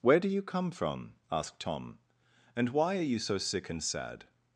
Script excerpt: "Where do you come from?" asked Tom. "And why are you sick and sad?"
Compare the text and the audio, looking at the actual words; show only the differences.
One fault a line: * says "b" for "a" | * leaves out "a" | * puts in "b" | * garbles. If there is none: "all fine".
* puts in "so"